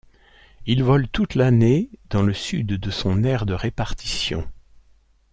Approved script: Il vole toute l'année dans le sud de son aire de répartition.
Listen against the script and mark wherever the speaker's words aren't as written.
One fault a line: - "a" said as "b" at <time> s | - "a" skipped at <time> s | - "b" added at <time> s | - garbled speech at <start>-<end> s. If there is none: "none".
none